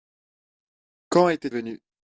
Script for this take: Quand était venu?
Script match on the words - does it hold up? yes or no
yes